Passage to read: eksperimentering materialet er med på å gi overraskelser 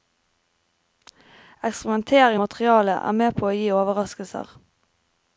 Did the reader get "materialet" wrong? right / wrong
right